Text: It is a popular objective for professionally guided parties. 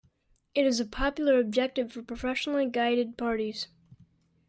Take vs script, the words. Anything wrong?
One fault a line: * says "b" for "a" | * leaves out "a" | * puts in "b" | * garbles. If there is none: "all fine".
all fine